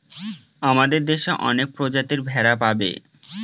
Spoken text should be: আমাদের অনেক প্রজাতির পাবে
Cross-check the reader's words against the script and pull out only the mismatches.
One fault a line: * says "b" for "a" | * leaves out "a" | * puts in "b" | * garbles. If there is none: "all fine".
* puts in "দেশে"
* puts in "ভেড়া"